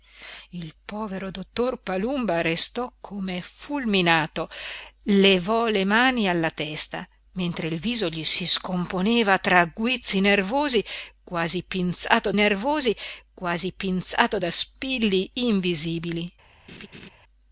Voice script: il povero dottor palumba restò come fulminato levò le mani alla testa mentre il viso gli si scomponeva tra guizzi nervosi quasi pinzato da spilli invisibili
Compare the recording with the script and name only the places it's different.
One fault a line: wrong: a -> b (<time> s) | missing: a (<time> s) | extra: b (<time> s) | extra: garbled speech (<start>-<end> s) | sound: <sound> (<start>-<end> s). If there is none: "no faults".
extra: nervosi quasi pinzato (12.3 s)
sound: laugh (16.7-17.1 s)